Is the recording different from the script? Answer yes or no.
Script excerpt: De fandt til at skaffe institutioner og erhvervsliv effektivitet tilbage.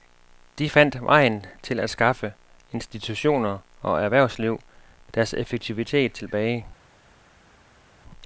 yes